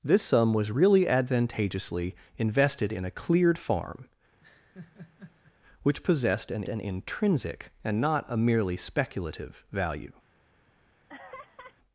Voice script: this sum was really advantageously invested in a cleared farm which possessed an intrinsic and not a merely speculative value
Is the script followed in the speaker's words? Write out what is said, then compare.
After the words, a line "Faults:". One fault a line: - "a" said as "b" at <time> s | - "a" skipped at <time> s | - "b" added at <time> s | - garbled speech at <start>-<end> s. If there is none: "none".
this sum was really advantageously invested in a cleared farm which possessed an an intrinsic and not a merely speculative value
Faults:
- "an" added at 6.7 s